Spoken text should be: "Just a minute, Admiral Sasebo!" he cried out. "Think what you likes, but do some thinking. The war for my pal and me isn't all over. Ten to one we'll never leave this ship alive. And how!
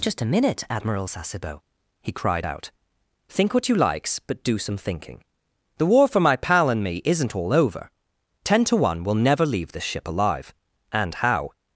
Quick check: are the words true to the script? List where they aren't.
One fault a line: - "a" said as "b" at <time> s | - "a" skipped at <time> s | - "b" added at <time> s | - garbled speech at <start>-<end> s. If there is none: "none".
none